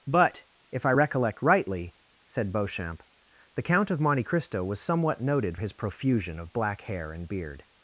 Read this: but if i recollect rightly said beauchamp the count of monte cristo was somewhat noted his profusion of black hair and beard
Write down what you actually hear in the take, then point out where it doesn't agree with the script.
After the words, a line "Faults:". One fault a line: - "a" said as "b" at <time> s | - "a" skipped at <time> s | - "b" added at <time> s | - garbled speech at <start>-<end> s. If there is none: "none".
but if i recollect rightly said beauchamp the count of monte cristo was somewhat noted his profusion of black hair and beard
Faults:
none